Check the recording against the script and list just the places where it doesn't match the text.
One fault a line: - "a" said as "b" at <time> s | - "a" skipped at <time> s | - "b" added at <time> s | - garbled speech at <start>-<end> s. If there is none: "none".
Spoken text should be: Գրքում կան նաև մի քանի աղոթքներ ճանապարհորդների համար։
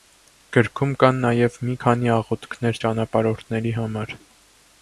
none